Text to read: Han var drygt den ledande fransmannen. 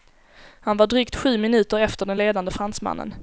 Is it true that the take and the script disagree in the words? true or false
true